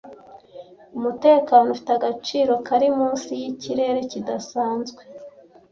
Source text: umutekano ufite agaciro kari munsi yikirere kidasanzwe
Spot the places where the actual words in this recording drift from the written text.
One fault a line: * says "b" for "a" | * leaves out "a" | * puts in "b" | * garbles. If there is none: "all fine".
all fine